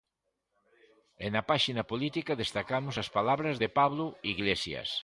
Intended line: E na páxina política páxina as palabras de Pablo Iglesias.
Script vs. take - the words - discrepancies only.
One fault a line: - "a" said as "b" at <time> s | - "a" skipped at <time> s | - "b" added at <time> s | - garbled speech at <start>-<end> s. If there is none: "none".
- "páxina" said as "destacamos" at 2.4 s